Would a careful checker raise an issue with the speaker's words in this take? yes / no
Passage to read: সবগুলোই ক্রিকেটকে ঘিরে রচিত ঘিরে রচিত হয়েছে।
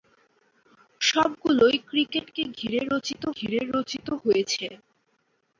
no